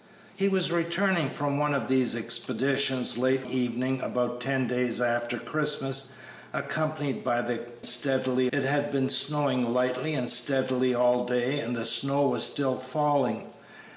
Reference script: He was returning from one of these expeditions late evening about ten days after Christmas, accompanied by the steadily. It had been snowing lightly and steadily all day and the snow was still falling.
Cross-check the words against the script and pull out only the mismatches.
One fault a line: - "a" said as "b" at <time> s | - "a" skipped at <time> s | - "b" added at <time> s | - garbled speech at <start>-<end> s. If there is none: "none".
none